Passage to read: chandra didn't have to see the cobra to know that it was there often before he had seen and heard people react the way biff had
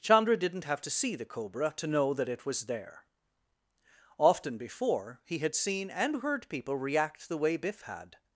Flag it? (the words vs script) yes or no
no